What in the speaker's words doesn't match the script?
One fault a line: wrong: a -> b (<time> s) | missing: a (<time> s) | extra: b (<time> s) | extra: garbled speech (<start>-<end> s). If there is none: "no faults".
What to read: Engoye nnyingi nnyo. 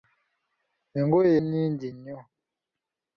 no faults